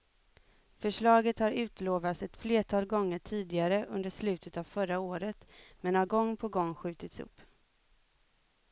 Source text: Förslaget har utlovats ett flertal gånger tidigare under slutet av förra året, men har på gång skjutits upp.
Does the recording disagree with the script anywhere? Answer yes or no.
yes